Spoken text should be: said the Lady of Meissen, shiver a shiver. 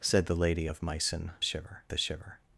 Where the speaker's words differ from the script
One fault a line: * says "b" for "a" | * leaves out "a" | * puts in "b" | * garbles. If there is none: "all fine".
all fine